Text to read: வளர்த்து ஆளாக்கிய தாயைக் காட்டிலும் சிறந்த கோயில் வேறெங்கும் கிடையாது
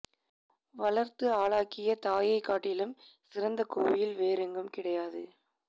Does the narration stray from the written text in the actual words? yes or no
no